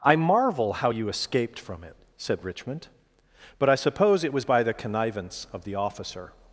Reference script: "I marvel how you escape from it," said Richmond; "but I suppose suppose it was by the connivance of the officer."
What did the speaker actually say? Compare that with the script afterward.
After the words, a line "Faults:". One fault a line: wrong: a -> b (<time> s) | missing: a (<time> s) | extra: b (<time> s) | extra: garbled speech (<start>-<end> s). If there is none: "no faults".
"I marvel how you escaped from it," said Richmond; "but I suppose it was by the connivance of the officer."
Faults:
wrong: escape -> escaped (1.1 s)
missing: suppose (4.2 s)